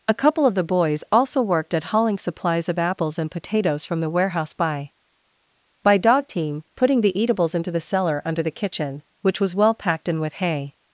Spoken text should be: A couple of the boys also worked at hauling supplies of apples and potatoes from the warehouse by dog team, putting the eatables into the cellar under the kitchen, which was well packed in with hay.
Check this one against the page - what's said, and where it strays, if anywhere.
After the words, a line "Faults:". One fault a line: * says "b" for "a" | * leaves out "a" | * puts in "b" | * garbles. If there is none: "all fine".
A couple of the boys also worked at hauling supplies of apples and potatoes from the warehouse by by dog team, putting the eatables into the cellar under the kitchen, which was well packed in with hay.
Faults:
* puts in "by"